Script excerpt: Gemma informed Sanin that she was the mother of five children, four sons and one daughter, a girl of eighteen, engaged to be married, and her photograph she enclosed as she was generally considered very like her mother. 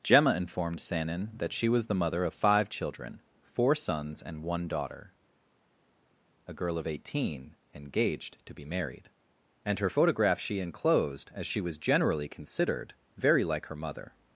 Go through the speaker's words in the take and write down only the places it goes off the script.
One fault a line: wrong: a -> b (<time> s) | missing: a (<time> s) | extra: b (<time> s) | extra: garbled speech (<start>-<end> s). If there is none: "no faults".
no faults